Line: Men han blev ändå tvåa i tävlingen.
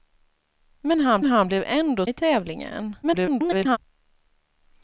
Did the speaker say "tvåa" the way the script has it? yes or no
no